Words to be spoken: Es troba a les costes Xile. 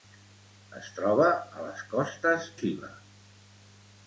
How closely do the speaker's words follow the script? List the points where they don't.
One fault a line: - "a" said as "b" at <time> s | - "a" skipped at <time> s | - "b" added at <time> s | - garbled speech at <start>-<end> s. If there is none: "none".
none